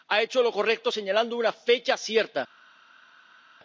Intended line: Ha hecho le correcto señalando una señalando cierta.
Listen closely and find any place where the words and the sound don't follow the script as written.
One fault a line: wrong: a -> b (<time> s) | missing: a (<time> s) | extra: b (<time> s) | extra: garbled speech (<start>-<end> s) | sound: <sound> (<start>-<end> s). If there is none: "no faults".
wrong: le -> lo (0.4 s)
wrong: señalando -> fecha (1.5 s)